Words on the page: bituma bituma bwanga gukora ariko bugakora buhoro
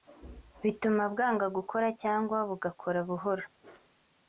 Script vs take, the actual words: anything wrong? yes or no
yes